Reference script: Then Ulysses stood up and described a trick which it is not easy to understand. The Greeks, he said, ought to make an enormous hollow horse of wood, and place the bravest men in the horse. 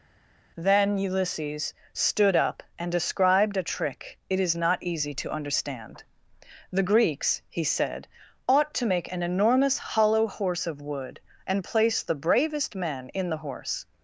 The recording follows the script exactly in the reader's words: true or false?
false